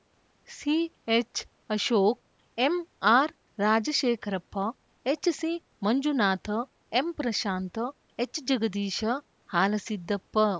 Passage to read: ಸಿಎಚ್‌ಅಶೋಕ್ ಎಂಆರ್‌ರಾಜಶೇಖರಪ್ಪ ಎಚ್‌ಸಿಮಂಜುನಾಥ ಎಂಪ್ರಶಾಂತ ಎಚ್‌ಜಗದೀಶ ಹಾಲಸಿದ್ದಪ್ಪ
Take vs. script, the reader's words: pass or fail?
pass